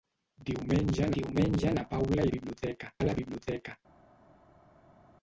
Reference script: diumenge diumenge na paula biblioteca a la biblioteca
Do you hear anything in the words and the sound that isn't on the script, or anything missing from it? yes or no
no